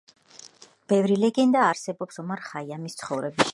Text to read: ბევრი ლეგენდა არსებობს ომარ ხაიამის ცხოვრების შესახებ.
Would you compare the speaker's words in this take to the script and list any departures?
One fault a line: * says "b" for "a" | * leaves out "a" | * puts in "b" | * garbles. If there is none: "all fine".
all fine